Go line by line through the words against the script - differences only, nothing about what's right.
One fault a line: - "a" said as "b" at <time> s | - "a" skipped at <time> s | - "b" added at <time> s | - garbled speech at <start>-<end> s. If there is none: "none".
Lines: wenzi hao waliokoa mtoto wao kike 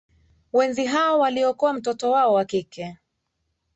- "wa" added at 2.3 s